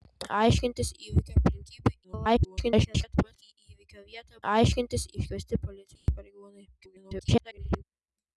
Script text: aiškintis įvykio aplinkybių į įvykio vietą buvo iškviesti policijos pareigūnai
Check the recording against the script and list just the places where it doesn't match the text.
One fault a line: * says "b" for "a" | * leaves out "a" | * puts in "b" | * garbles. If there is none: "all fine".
* garbles
* says "aiškintis" for "buvo"
* garbles